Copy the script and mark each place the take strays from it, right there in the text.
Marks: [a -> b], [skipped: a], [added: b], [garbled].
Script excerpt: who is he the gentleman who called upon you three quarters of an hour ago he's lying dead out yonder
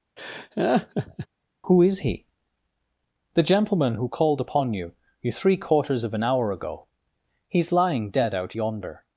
who is he the gentleman who called upon you [added: you] three quarters of an hour ago he's lying dead out yonder